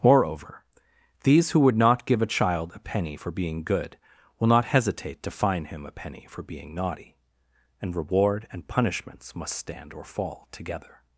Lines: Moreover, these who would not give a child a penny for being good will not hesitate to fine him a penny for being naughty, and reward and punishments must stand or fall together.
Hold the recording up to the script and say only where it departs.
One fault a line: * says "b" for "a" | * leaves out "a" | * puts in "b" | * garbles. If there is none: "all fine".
all fine